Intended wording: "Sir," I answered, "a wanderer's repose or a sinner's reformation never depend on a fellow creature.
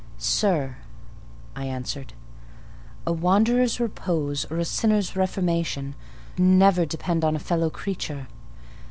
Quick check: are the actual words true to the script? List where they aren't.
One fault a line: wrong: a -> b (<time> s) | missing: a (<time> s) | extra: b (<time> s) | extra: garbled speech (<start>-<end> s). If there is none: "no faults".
no faults